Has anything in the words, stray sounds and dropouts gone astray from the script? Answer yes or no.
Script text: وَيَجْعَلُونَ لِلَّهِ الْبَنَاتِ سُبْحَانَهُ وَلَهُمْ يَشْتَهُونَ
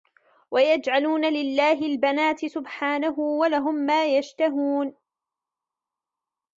yes